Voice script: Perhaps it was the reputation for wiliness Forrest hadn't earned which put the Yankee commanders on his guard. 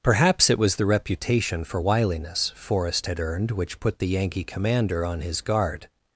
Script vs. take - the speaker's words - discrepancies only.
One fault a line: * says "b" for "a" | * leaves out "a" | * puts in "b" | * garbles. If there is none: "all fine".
* says "had" for "hadn't"
* says "commander" for "commanders"